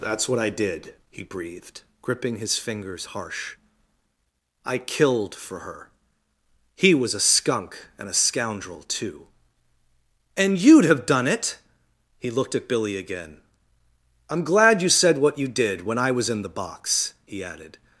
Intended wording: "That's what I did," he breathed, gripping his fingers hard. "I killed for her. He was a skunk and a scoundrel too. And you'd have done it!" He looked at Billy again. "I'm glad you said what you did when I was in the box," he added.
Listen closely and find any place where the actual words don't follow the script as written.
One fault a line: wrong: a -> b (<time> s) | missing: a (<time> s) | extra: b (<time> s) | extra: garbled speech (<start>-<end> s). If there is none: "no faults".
wrong: hard -> harsh (3.1 s)